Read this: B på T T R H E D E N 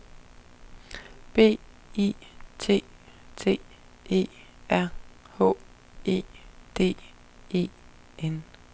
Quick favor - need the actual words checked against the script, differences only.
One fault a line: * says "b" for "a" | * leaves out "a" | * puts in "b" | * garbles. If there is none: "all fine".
* says "I" for "på"
* puts in "E"